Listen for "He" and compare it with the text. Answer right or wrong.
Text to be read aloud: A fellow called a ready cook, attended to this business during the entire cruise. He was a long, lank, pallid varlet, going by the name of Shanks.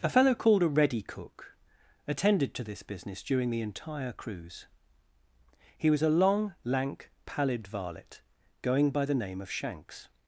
right